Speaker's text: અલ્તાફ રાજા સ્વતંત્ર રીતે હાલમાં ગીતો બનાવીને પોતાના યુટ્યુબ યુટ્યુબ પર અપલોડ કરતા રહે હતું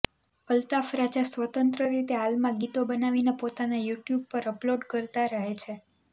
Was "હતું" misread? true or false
true